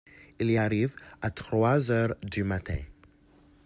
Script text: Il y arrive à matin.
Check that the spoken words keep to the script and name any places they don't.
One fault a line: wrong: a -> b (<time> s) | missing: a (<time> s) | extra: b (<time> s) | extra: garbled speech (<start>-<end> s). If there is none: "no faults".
extra: trois heures du (1.3 s)